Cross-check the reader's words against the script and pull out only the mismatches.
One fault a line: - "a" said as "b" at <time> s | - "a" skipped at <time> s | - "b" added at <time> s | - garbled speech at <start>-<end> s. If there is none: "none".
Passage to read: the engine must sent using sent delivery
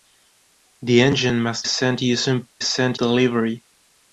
none